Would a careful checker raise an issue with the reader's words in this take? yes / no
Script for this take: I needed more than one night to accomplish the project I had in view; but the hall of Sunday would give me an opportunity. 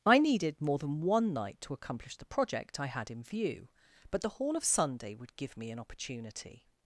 no